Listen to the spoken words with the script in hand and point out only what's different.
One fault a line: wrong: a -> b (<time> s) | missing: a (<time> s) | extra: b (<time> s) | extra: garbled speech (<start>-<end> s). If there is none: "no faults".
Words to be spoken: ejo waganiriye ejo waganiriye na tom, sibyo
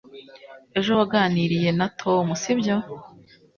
missing: ejo waganiriye (1.7 s)